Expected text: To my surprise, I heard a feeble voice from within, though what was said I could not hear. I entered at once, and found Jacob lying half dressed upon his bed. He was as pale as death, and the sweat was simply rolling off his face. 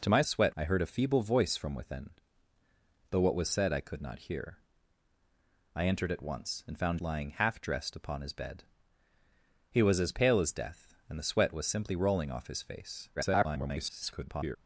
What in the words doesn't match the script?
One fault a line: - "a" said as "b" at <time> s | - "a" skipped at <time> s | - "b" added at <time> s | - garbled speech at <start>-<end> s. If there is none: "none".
- "surprise" said as "sweat" at 0.2 s
- "Jacob" skipped at 7.0 s
- garbled speech at 13.2-14.6 s